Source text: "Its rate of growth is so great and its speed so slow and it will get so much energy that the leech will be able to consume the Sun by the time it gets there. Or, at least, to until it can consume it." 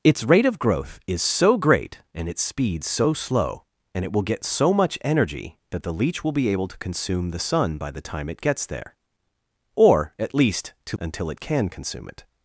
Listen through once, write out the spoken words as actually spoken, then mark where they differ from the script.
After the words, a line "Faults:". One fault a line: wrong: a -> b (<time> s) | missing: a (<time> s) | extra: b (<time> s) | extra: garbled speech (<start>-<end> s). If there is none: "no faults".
"Its rate of growth is so great and its speed so slow and it will get so much energy that the leech will be able to consume the Sun by the time it gets there. Or, at least, to until it can consume it."
Faults:
no faults